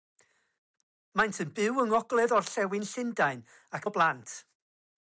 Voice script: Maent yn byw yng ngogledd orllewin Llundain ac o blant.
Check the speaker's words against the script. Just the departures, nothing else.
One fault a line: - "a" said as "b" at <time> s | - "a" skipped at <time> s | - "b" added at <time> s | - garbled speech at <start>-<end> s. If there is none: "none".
none